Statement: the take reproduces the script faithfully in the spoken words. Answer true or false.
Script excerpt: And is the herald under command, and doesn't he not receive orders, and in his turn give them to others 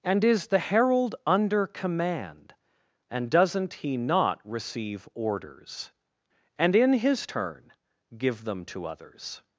true